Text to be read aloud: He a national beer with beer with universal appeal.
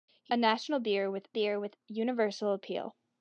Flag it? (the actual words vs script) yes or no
no